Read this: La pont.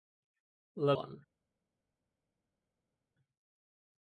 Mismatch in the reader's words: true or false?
false